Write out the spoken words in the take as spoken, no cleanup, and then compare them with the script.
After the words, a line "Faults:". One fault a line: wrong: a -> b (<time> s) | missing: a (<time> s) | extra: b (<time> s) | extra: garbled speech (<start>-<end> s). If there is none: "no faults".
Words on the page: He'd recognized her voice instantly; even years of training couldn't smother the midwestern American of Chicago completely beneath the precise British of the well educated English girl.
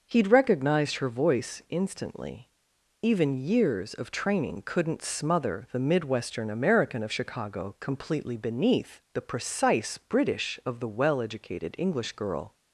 He'd recognized her voice instantly; even years of training couldn't smother the midwestern American of Chicago completely beneath the precise British of the well educated English girl.
Faults:
no faults